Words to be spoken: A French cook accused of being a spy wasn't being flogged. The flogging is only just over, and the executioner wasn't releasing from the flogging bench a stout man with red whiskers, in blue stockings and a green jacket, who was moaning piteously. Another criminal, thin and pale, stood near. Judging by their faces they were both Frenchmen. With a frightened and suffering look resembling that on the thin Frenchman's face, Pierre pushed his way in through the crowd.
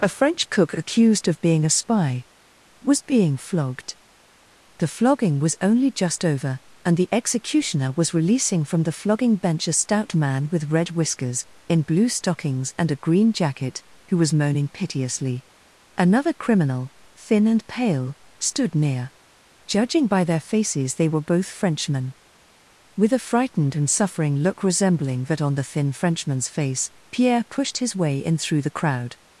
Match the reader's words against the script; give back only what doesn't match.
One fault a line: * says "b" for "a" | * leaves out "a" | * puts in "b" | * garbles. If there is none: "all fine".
* says "was" for "wasn't"
* says "was" for "is"
* says "was" for "wasn't"